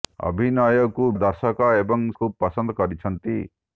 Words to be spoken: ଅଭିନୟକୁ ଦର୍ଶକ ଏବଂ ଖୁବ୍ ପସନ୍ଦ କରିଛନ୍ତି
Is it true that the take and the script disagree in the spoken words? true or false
false